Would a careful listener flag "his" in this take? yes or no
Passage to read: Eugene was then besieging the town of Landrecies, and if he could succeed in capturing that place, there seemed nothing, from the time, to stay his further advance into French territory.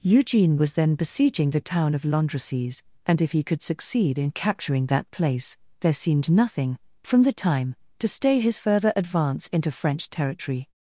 no